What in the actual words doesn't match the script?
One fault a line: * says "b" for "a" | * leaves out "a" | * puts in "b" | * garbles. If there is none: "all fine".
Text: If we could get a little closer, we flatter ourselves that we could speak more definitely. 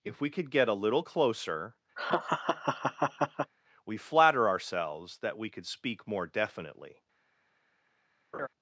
all fine